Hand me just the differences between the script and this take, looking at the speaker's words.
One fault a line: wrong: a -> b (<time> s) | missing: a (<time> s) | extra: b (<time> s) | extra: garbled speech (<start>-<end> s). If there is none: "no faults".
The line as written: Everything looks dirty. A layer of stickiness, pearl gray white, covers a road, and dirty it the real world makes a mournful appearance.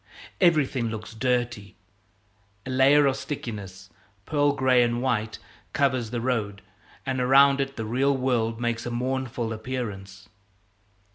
extra: and (4.8 s)
wrong: a -> the (6.1 s)
wrong: dirty -> around (7.2 s)